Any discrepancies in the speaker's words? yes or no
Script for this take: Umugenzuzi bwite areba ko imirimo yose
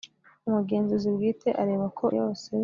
yes